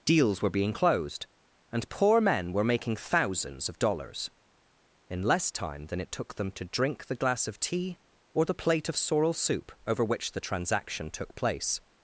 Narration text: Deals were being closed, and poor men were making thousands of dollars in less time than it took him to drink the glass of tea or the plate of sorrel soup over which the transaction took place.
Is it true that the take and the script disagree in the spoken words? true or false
true